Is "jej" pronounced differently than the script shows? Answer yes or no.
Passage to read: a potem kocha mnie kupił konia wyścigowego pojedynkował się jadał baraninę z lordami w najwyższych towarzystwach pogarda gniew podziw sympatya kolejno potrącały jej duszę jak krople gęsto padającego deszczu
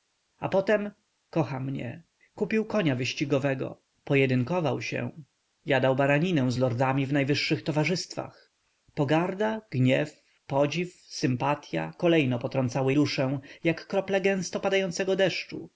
yes